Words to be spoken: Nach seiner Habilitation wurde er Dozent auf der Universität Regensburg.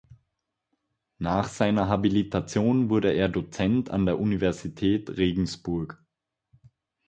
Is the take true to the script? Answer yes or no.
no